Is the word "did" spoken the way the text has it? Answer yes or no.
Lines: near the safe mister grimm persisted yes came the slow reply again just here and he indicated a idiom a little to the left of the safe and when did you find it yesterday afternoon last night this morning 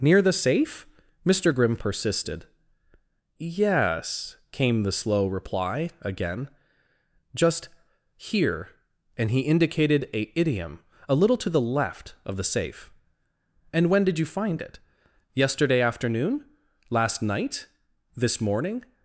yes